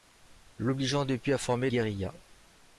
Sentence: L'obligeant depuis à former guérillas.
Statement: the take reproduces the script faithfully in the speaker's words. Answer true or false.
true